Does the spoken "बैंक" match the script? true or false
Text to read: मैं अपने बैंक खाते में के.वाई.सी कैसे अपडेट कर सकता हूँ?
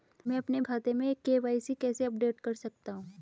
false